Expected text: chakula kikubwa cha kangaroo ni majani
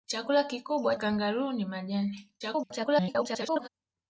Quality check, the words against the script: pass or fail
fail